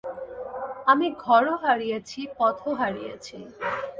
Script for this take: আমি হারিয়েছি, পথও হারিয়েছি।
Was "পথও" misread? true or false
false